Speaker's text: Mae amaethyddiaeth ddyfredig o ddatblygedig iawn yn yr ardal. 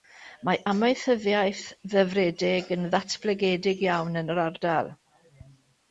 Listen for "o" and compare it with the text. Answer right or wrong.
wrong